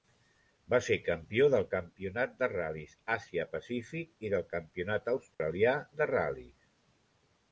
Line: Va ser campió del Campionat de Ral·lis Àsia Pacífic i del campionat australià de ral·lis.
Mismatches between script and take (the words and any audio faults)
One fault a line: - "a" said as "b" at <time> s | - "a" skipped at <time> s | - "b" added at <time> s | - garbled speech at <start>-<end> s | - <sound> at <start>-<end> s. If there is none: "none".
- dropout at 5.3-5.4 s